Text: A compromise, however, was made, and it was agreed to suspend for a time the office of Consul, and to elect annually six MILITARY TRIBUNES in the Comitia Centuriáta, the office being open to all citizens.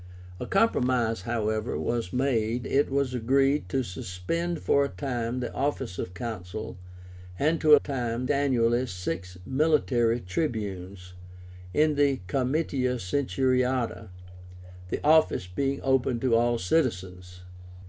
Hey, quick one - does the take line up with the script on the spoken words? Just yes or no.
no